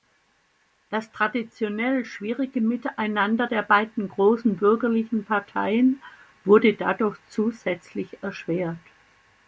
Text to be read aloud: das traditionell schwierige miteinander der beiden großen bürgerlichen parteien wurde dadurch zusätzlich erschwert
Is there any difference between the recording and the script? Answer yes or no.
no